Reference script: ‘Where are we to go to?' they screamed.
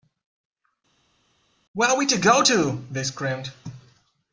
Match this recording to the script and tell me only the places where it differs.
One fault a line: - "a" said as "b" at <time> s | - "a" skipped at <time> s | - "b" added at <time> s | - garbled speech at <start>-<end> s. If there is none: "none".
none